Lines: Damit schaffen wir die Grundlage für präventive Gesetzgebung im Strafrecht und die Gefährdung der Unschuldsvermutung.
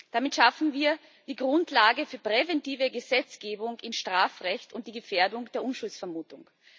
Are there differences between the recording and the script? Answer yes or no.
no